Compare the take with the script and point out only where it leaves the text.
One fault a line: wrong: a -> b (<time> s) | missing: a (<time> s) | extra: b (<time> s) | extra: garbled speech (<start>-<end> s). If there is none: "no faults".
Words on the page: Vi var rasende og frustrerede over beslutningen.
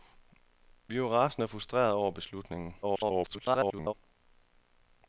extra: garbled speech (2.8-3.9 s)